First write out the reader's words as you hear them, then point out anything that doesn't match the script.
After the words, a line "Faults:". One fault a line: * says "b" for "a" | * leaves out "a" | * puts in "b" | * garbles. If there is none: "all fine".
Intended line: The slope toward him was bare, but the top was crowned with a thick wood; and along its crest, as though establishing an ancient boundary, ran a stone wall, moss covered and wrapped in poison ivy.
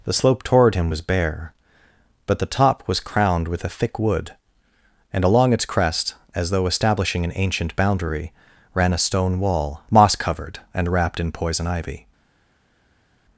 The slope toward him was bare, but the top was crowned with a thick wood; and along its crest, as though establishing an ancient boundary, ran a stone wall, moss covered and wrapped in poison ivy.
Faults:
all fine